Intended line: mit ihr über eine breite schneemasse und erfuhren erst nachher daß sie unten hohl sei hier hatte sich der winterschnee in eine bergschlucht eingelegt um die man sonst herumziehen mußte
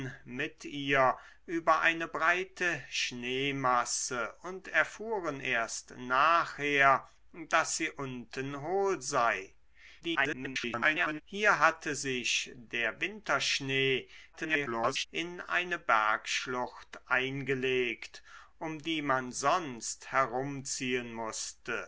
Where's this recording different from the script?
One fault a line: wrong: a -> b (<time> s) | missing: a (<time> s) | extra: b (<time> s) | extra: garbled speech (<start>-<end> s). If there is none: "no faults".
extra: garbled speech (10.0-11.2 s)
extra: garbled speech (14.3-15.1 s)